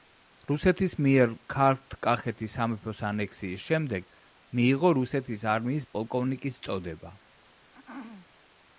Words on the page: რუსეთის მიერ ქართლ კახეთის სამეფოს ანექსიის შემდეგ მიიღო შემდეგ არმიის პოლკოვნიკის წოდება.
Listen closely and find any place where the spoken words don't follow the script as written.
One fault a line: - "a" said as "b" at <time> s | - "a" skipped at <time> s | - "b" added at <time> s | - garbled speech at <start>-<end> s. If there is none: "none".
- "შემდეგ" said as "რუსეთის" at 5.0 s